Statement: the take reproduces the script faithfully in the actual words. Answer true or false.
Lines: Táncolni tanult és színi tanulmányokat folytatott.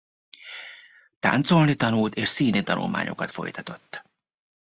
true